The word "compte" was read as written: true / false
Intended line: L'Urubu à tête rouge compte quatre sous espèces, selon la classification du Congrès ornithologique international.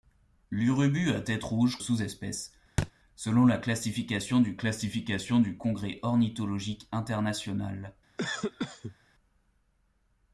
false